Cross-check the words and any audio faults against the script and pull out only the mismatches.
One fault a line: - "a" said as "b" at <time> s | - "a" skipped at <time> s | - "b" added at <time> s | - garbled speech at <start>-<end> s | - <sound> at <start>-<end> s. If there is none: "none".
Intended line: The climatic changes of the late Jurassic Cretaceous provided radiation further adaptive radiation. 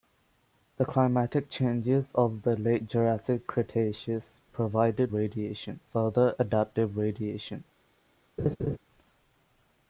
- laugh at 8.4-8.8 s